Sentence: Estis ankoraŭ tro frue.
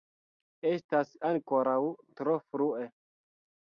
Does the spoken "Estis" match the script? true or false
false